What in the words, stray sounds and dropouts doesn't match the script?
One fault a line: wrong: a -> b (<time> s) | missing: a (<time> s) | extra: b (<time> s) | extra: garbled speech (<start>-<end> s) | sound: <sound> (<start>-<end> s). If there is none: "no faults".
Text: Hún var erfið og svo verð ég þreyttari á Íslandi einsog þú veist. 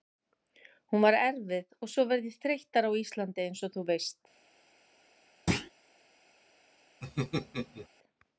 sound: thud (5.5-5.7 s)
sound: laugh (7.0-7.9 s)